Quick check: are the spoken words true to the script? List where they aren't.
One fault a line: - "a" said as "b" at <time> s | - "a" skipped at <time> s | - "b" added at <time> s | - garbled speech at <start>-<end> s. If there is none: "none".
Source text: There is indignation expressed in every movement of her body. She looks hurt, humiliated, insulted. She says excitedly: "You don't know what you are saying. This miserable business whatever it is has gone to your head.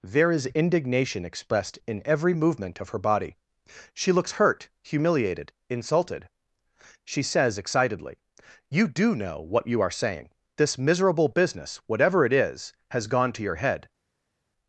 - "don't" said as "do" at 8.9 s